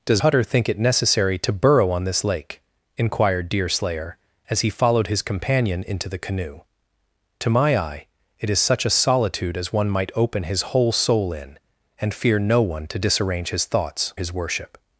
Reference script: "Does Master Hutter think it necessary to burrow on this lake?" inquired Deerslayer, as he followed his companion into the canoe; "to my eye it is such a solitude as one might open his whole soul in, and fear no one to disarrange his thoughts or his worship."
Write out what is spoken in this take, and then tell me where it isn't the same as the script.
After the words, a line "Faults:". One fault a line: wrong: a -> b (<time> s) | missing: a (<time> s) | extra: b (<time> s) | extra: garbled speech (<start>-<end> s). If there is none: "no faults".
"Does Hutter think it necessary to burrow on this lake?" inquired Deerslayer, as he followed his companion into the canoe; "to my eye it is such a solitude as one might open his whole soul in, and fear no one to disarrange his thoughts his worship."
Faults:
missing: Master (0.2 s)
missing: or (14.1 s)